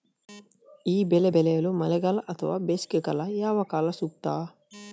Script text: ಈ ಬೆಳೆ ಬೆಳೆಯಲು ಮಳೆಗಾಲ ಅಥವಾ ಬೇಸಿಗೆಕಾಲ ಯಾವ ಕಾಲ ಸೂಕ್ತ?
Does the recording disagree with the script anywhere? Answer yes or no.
no